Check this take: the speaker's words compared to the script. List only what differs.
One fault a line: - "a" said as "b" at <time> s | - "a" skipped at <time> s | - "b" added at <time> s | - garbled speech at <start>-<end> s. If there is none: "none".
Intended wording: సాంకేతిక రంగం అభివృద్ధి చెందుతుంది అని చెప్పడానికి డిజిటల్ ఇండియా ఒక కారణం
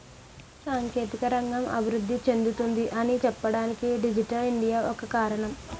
none